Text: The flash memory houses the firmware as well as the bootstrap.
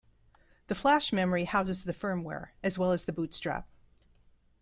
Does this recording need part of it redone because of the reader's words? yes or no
no